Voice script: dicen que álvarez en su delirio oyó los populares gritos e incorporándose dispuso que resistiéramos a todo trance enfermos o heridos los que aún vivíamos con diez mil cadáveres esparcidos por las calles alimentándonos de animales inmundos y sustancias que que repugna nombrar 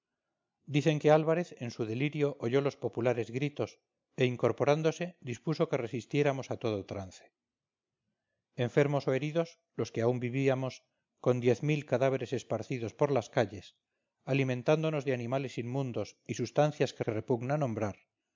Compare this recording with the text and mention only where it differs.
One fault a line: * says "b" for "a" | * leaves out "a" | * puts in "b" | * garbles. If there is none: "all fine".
all fine